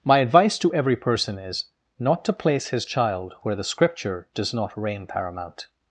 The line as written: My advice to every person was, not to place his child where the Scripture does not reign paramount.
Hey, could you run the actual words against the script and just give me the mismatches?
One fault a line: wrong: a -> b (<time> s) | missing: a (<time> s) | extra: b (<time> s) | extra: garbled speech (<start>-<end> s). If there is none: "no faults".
wrong: was -> is (1.4 s)